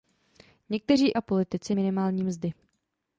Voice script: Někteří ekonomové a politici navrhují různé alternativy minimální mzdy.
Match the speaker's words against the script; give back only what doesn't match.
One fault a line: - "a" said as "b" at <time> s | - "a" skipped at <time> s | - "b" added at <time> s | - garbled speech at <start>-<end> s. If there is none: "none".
- "ekonomové" skipped at 1.2 s
- "navrhují různé alternativy" skipped at 1.7 s